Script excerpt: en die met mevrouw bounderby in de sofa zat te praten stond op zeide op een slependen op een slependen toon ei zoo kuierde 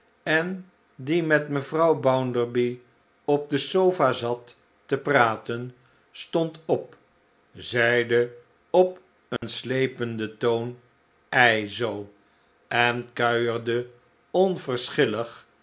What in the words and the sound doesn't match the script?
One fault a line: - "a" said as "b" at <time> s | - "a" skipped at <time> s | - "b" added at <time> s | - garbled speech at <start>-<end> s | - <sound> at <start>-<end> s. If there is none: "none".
- "in" said as "op" at 3.2 s
- dropout at 9.4-9.4 s
- "op een slependen" skipped at 10.4 s
- "en" added at 12.7 s